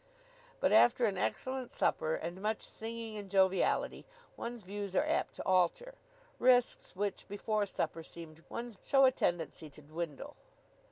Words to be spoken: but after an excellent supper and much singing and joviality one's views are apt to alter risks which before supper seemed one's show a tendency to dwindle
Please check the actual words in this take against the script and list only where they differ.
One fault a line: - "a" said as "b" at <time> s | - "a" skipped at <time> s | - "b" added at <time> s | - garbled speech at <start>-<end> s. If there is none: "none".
none